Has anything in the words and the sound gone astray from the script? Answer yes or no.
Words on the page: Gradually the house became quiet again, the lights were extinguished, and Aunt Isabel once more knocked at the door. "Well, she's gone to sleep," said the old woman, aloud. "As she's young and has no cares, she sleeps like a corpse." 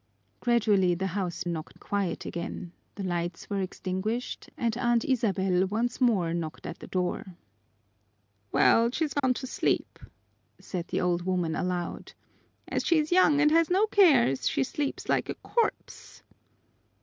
yes